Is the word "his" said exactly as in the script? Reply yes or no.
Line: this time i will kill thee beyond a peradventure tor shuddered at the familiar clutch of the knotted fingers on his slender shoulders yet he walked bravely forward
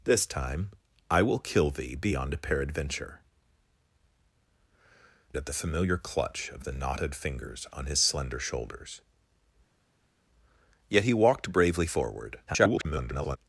yes